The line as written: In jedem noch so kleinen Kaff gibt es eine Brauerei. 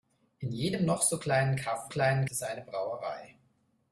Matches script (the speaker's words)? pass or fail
fail